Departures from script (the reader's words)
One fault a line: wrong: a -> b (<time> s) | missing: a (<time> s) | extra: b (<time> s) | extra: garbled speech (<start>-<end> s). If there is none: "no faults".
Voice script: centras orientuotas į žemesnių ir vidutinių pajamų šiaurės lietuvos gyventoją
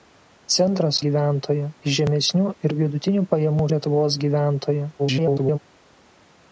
wrong: orientuotas -> gyventoją (1.1 s)
missing: šiaurės (3.7 s)
extra: garbled speech (5.0-5.6 s)